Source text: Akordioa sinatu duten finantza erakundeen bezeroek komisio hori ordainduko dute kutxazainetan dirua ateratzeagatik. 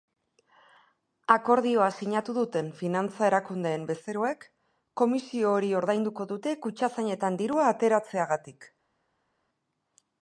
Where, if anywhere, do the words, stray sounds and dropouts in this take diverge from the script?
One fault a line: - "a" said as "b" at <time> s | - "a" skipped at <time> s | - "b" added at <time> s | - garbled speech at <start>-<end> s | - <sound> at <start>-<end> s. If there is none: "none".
none